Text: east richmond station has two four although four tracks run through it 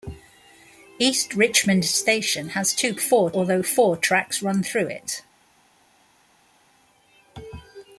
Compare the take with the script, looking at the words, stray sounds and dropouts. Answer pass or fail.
pass